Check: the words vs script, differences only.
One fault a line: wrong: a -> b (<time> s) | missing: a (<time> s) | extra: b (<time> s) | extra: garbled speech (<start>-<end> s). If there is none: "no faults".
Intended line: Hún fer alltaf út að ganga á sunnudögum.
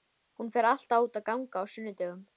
no faults